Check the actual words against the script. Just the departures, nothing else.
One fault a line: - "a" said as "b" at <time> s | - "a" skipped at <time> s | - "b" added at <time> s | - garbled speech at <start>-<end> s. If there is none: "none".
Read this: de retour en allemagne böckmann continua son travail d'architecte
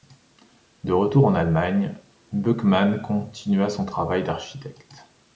none